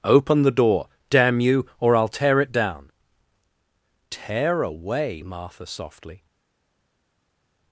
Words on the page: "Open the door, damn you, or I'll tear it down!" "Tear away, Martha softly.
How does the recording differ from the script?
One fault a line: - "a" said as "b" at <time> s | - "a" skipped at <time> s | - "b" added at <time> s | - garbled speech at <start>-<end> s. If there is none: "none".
none